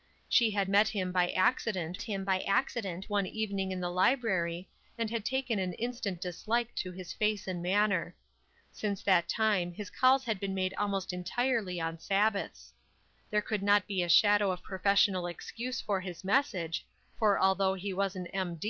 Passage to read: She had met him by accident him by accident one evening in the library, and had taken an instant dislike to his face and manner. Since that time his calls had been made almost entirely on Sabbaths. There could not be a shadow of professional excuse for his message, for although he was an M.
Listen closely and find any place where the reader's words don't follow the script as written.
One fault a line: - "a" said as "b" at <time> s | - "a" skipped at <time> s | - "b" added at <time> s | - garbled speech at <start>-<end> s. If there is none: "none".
none